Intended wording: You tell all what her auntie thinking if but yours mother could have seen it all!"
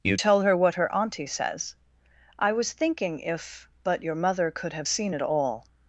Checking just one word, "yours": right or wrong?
wrong